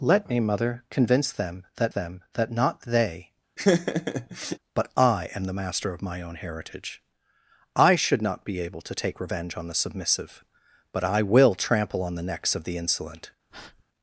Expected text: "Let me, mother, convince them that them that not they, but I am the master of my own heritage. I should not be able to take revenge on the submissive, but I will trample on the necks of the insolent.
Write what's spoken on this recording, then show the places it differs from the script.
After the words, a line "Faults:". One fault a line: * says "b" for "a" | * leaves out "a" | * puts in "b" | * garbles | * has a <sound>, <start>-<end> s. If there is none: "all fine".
"Let me, mother, convince them that them that not they, but I am the master of my own heritage. I should not be able to take revenge on the submissive, but I will trample on the necks of the insolent.
Faults:
* has a laugh, 3.6-4.6 s
* has a breath, 13.5-13.8 s